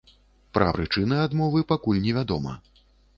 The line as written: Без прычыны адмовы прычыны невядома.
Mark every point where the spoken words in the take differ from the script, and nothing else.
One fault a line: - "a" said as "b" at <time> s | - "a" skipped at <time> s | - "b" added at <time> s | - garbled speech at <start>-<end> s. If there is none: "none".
- "Без" said as "Пра" at 0.6 s
- "прычыны" said as "пакуль" at 1.7 s